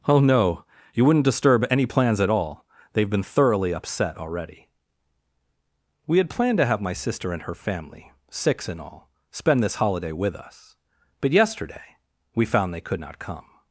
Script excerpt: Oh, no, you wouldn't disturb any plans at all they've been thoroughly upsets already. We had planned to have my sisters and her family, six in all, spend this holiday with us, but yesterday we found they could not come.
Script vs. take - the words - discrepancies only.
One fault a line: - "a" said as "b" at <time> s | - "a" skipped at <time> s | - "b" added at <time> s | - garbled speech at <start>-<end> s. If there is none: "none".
- "upsets" said as "upset" at 3.7 s
- "sisters" said as "sister" at 6.9 s